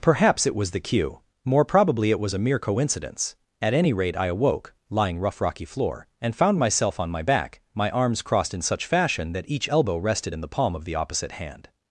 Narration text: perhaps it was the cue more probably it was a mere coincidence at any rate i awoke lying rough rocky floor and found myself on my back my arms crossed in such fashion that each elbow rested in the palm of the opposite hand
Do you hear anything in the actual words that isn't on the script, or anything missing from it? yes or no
no